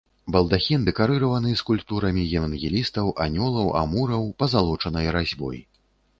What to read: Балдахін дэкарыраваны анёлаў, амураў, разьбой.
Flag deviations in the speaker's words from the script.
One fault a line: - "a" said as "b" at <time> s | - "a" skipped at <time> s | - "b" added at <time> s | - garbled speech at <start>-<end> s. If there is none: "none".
- "скульптурамі евангелістаў" added at 1.6 s
- "пазалочанай" added at 4.5 s